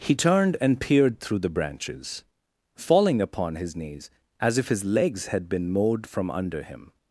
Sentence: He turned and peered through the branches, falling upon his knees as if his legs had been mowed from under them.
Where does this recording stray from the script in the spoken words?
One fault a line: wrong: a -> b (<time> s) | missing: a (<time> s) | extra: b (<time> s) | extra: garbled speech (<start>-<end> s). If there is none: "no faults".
wrong: them -> him (6.6 s)